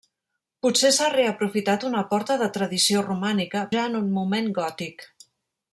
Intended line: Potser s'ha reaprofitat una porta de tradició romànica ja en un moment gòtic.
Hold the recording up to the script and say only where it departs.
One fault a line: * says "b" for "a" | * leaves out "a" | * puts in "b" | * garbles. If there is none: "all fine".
all fine